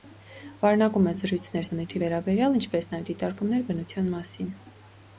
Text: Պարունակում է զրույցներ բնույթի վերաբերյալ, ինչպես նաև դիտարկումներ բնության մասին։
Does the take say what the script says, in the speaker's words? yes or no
yes